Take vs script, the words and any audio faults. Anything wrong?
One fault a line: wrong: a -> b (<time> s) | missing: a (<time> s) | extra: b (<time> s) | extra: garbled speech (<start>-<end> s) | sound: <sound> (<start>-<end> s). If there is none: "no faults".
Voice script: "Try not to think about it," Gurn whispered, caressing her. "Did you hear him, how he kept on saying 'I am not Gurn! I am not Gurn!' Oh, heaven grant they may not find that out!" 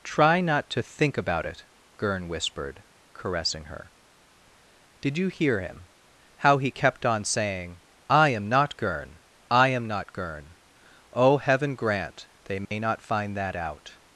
sound: dropout (12.7-12.7 s)